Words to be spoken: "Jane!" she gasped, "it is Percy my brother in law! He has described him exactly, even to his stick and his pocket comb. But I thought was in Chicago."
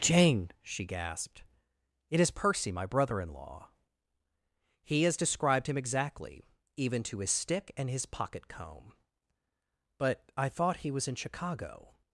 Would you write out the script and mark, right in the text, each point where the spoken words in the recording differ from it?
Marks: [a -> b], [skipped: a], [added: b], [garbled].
"Jane!" she gasped, "it is Percy my brother in law! He has described him exactly, even to his stick and his pocket comb. But I thought [added: he] was in Chicago."